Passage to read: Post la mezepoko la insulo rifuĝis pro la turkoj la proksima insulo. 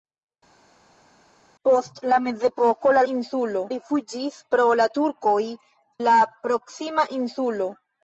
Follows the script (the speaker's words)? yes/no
yes